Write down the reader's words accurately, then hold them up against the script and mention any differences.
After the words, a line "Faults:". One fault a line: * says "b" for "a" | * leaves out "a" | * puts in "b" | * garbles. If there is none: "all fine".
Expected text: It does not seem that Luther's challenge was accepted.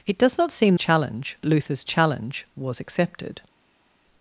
It does not seem challenge Luther's challenge was accepted.
Faults:
* says "challenge" for "that"